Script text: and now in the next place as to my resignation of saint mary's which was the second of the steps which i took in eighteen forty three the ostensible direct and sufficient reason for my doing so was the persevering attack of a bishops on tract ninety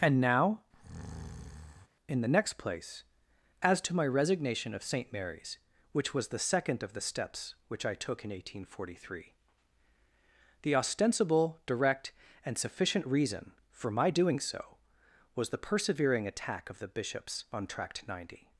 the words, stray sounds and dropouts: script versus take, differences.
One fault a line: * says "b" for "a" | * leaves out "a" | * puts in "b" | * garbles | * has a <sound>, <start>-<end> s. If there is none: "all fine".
* has a breath, 0.7-1.9 s
* says "the" for "a"